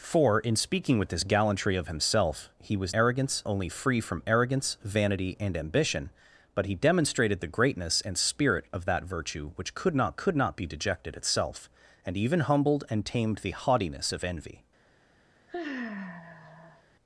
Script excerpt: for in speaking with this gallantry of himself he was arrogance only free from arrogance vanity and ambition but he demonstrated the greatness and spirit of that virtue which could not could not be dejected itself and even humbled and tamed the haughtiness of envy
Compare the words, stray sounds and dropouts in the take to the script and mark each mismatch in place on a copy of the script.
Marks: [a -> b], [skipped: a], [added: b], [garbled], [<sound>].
for in speaking with this gallantry of himself he was arrogance only free from arrogance vanity and ambition but he demonstrated the greatness and spirit of that virtue which could not could not be dejected itself and even humbled and tamed the haughtiness of envy [sigh]